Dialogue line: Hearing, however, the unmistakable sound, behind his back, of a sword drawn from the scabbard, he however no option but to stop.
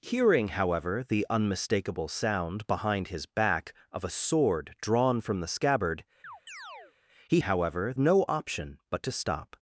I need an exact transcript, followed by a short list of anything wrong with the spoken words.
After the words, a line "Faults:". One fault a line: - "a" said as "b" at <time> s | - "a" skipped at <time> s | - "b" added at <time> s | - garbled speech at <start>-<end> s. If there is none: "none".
Hearing, however, the unmistakable sound, behind his back, of a sword drawn from the scabbard, he however no option but to stop.
Faults:
none